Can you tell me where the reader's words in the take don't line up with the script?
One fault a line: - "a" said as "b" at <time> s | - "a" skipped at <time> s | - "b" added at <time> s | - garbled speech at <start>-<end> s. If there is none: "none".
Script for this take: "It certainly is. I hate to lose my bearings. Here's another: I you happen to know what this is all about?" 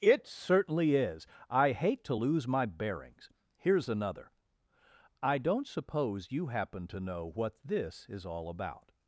- "don't suppose" added at 5.4 s